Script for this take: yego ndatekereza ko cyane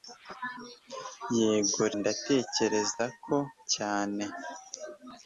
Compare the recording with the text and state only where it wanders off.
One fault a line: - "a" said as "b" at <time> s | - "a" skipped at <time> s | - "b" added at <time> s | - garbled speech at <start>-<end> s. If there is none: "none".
none